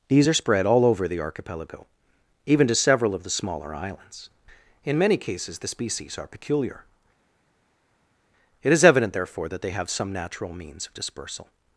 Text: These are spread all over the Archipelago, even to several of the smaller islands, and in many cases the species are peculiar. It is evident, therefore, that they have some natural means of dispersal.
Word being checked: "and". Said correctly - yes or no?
no